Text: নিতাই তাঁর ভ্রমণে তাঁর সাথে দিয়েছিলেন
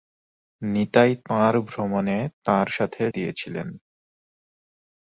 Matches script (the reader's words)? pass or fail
pass